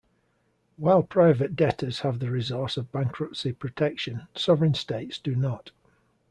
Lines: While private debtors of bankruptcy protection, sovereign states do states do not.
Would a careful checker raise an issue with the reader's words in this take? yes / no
yes